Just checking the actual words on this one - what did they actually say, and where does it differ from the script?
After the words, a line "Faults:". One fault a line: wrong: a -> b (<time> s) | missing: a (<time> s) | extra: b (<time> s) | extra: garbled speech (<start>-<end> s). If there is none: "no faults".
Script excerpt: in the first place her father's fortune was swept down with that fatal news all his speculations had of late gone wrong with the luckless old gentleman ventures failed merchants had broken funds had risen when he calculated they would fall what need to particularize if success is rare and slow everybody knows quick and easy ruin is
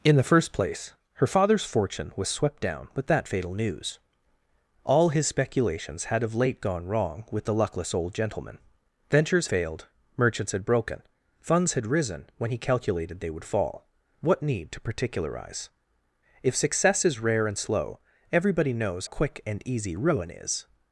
in the first place her father's fortune was swept down with that fatal news all his speculations had of late gone wrong with the luckless old gentleman ventures failed merchants had broken funds had risen when he calculated they would fall what need to particularize if success is rare and slow everybody knows quick and easy ruin is
Faults:
no faults